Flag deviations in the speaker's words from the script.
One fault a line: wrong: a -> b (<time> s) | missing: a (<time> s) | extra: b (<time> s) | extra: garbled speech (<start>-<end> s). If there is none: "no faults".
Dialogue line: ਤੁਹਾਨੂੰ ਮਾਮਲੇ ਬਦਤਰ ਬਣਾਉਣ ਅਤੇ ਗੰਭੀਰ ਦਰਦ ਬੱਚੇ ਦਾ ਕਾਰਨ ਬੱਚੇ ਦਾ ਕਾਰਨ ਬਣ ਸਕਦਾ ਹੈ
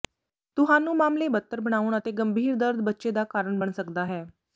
missing: ਬੱਚੇ ਦਾ ਕਾਰਨ (3.6 s)